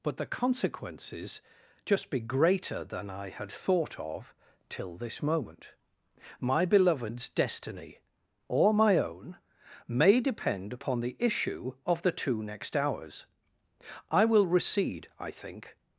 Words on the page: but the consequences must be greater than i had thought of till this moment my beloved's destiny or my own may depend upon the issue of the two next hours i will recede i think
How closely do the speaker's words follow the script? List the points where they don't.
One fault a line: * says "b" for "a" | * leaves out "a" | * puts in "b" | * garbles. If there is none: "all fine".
* says "just" for "must"